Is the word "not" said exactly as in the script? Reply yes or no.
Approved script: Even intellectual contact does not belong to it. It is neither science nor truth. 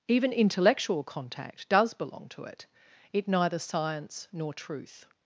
no